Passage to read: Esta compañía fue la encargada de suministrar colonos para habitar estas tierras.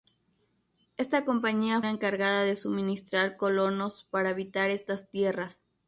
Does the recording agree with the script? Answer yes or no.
no